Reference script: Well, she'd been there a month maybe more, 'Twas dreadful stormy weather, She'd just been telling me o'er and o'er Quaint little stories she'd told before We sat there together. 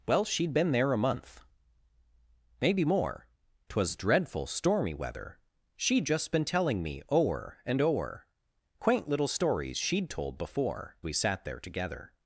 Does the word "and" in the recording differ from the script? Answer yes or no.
no